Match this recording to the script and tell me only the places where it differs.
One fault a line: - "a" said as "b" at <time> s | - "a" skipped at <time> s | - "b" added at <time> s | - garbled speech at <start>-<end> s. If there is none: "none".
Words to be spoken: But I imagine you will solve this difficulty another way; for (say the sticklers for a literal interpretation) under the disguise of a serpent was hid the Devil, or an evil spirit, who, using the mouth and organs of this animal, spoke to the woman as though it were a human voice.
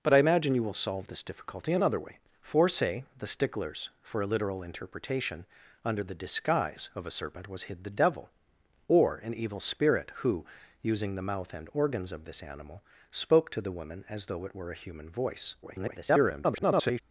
- garbled speech at 15.6-17.0 s